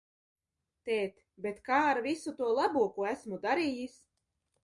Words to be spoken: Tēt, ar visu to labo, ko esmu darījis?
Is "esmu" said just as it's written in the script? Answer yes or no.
yes